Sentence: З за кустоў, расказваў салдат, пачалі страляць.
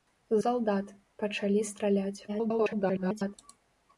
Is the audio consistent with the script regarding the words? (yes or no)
no